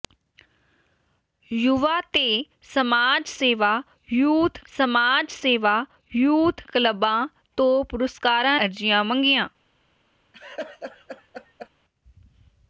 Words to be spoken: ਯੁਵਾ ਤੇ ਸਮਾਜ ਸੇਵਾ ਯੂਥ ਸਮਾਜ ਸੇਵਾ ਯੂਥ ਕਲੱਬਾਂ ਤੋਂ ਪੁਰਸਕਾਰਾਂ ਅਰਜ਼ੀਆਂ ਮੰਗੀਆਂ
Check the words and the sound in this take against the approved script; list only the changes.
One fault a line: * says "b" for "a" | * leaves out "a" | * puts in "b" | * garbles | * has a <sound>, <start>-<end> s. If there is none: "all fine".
* has a laugh, 10.3-11.7 s